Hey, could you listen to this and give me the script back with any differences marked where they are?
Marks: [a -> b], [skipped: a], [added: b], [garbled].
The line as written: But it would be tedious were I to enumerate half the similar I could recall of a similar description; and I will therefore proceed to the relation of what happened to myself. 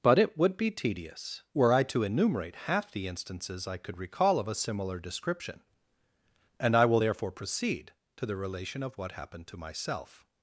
But it would be tedious were I to enumerate half the [similar -> instances] I could recall of a similar description; and I will therefore proceed to the relation of what happened to myself.